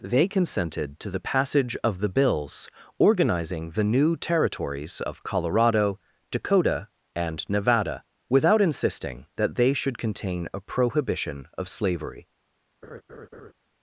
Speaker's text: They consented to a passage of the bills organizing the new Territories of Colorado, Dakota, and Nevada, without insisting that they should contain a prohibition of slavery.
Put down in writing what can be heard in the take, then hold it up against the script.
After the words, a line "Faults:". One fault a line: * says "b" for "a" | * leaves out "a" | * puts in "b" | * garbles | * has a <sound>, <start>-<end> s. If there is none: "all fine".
They consented to the passage of the bills organizing the new Territories of Colorado, Dakota, and Nevada, without insisting that they should contain a prohibition of slavery.
Faults:
* says "the" for "a"
* has a laugh, 12.8-13.5 s